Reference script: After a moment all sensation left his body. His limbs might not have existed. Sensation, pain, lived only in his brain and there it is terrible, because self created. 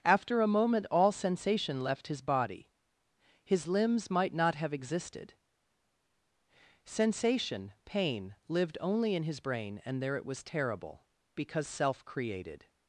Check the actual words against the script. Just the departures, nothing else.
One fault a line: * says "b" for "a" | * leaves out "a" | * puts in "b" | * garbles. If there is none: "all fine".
* says "was" for "is"